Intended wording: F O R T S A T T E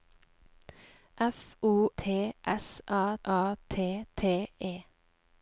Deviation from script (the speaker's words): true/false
true